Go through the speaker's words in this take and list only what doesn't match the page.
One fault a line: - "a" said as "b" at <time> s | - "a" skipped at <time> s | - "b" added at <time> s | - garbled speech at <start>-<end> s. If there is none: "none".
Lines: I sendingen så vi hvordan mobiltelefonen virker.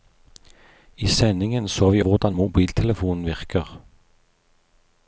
none